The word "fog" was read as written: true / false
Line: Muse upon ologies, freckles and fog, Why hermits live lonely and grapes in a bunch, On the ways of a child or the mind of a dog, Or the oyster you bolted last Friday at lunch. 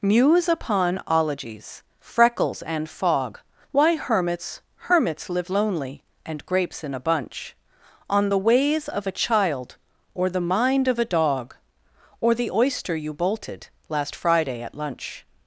true